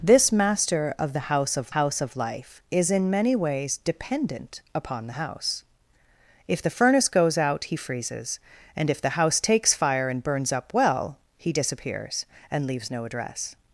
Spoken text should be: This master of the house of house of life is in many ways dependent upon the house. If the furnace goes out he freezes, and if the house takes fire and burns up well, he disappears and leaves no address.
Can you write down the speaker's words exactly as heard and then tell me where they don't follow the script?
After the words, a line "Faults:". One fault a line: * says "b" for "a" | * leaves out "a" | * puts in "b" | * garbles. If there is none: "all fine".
This master of the house of house of life is in many ways dependent upon the house. If the furnace goes out he freezes, and if the house takes fire and burns up well, he disappears and leaves no address.
Faults:
all fine